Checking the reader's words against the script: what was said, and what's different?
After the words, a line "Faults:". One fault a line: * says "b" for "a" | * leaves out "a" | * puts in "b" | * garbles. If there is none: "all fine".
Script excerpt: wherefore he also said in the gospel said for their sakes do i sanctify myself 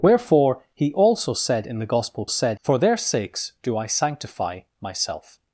wherefore he also said in the gospel said for their sakes do i sanctify myself
Faults:
all fine